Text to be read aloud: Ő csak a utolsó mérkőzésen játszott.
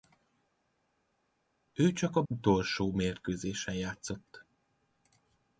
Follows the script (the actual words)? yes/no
yes